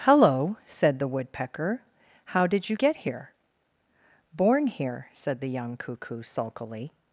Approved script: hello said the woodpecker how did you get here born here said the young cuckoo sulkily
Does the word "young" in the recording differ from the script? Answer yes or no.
no